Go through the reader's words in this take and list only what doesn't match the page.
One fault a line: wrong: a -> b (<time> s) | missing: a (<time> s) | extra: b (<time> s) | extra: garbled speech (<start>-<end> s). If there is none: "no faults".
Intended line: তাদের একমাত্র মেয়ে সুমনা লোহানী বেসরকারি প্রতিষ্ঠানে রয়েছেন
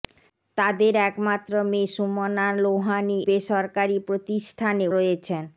no faults